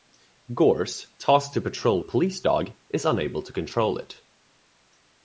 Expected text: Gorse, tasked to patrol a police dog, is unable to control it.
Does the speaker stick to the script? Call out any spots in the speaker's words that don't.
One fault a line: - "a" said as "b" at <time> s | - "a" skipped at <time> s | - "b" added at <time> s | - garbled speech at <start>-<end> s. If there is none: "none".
none